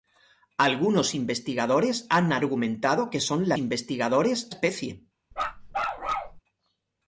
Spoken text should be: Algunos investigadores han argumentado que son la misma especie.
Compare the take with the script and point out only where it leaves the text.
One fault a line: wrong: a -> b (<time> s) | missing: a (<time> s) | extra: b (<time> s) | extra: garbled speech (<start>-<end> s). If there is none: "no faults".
wrong: misma -> investigadores (3.6 s)